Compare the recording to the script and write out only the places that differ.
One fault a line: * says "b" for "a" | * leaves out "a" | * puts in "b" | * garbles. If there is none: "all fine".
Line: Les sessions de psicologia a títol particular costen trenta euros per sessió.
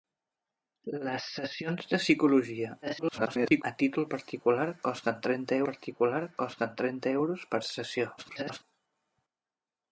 * garbles
* puts in "particular costen trenta"
* garbles